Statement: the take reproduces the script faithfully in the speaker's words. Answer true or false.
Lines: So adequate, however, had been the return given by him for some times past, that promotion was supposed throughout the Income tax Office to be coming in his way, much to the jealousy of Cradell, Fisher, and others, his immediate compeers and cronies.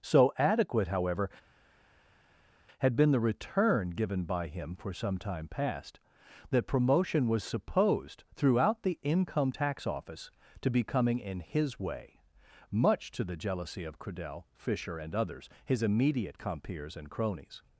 false